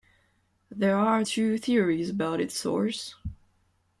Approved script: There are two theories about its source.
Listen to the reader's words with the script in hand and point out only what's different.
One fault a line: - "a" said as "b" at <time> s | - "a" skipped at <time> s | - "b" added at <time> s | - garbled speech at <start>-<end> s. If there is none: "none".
none